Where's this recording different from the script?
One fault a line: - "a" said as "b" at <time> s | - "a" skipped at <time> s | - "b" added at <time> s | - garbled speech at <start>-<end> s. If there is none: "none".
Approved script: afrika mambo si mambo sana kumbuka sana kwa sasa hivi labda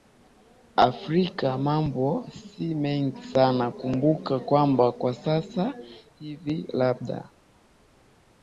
- "mambo" said as "mengi" at 2.8 s
- "sana" said as "kwamba" at 4.4 s